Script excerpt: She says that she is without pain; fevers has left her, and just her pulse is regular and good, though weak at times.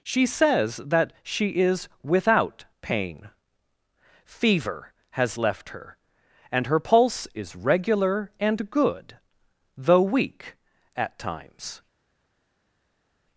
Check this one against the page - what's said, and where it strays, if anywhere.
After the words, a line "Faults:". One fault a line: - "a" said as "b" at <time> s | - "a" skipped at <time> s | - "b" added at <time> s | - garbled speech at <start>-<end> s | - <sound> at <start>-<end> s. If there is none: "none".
She says that she is without pain; fever has left her, and her pulse is regular and good, though weak at times.
Faults:
- "fevers" said as "fever" at 4.2 s
- "just" skipped at 6.7 s